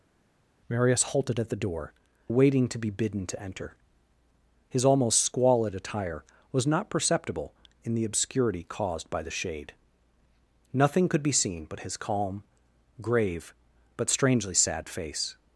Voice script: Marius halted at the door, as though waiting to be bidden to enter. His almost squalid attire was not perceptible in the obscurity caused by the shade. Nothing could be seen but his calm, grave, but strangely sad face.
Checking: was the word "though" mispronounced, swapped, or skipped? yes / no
yes